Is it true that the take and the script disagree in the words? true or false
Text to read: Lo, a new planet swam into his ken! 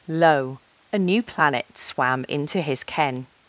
false